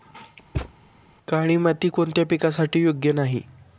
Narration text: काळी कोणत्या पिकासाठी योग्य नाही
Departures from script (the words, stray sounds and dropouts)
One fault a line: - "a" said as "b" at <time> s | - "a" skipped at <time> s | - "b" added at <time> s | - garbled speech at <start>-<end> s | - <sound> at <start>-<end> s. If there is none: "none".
- thud at 0.5-0.7 s
- "माती" added at 1.6 s